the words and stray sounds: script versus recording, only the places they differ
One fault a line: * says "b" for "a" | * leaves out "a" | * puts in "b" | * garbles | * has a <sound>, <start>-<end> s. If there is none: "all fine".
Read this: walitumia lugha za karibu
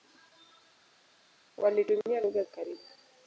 * leaves out "za"